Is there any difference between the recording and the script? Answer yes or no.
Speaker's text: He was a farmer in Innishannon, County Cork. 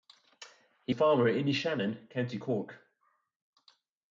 yes